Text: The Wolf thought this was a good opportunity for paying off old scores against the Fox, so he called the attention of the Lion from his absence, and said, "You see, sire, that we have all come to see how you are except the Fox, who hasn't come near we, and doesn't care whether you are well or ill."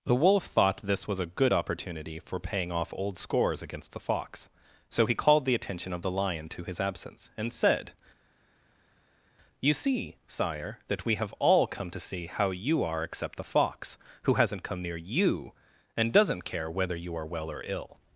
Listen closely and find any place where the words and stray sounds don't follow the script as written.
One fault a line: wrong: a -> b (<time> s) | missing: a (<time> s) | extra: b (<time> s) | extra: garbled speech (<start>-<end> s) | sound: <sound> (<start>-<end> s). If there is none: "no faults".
wrong: from -> to (6.5 s)
wrong: we -> you (15.0 s)